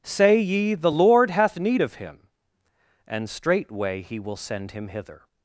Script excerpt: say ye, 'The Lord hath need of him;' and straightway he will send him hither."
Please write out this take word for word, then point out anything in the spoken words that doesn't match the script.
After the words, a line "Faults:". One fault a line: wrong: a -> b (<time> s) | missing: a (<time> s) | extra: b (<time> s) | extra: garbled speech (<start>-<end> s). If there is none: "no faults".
say ye, 'The Lord hath need of him;' and straightway he will send him hither."
Faults:
no faults